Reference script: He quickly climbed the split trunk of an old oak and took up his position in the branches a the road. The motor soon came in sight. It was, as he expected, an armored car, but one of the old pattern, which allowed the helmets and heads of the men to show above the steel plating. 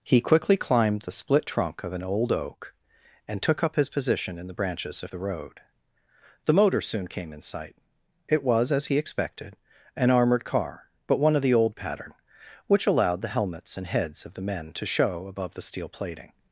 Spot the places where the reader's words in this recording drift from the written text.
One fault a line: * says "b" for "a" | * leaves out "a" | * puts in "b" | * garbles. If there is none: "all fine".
all fine